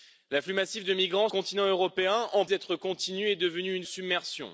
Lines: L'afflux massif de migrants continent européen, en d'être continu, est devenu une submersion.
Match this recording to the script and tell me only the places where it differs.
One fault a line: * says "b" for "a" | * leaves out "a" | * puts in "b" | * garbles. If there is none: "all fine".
all fine